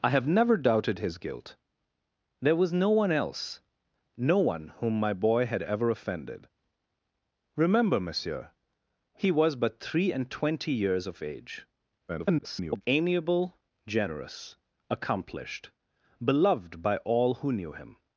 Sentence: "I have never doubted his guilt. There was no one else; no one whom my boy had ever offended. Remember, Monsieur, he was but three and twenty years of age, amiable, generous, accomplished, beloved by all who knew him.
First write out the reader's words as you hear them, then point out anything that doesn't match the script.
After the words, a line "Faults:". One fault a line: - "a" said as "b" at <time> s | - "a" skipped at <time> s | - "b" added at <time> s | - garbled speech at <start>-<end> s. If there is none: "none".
"I have never doubted his guilt. There was no one else; no one whom my boy had ever offended. Remember, Monsieur, he was but three and twenty years of age, [garbled] amiable, generous, accomplished, beloved by all who knew him.
Faults:
- garbled speech at 12.1-12.8 s